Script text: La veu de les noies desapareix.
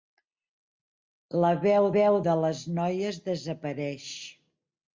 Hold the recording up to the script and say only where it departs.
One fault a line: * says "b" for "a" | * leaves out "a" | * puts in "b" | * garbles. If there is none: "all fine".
* puts in "veu"